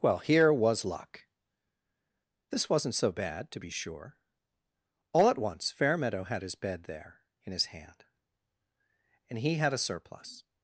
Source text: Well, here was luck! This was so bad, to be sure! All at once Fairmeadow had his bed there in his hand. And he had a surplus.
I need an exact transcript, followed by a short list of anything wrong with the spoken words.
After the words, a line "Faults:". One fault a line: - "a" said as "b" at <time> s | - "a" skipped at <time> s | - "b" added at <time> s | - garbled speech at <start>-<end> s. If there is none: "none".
Well, here was luck! This wasn't so bad, to be sure! All at once Fairmeadow had his bed there in his hand. And he had a surplus.
Faults:
- "was" said as "wasn't" at 2.7 s